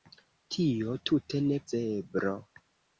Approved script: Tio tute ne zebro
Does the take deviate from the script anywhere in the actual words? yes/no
no